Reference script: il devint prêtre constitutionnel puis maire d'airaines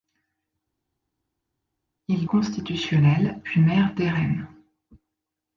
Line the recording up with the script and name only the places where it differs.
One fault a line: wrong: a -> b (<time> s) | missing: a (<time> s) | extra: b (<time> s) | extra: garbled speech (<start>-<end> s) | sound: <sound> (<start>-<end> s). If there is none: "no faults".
missing: devint prêtre (2.3 s)